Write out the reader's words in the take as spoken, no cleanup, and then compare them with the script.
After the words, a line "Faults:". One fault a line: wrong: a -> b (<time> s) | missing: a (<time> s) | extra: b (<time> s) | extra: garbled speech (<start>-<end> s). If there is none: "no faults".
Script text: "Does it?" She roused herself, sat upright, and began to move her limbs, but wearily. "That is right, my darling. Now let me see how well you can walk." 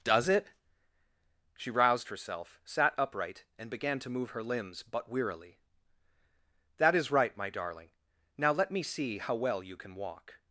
"Does it?" She roused herself, sat upright, and began to move her limbs, but wearily. "That is right, my darling. Now let me see how well you can walk."
Faults:
no faults